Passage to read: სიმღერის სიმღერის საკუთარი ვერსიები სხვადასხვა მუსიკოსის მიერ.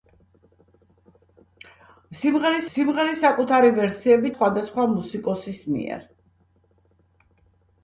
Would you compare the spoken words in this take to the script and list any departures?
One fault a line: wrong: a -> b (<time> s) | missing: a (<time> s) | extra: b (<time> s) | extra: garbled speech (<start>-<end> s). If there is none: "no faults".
no faults